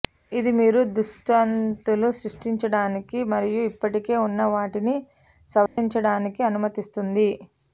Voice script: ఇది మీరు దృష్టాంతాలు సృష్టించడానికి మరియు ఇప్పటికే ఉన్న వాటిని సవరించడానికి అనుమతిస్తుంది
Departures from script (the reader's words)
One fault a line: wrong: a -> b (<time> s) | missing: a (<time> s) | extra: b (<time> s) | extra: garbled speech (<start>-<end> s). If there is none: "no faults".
no faults